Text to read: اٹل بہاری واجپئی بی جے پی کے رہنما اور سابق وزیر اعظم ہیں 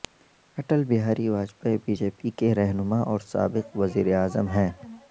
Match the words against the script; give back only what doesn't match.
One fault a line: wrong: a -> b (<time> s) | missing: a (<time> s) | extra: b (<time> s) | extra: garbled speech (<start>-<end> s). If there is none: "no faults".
no faults